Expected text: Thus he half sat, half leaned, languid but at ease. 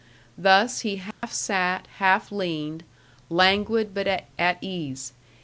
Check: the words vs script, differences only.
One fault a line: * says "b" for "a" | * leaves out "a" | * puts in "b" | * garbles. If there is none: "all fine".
all fine